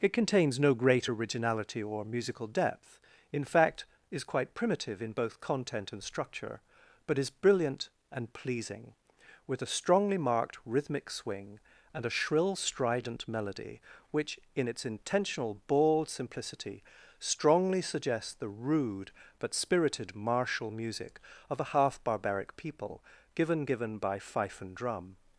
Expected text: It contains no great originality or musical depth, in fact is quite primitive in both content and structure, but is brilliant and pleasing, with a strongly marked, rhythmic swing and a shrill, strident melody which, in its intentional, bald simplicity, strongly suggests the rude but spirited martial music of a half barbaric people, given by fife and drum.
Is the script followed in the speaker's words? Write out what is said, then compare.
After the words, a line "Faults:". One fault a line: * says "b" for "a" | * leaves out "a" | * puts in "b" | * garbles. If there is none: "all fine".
It contains no great originality or musical depth, in fact is quite primitive in both content and structure, but is brilliant and pleasing, with a strongly marked, rhythmic swing and a shrill, strident melody which, in its intentional, bald simplicity, strongly suggests the rude but spirited martial music of a half barbaric people, given given by fife and drum.
Faults:
* puts in "given"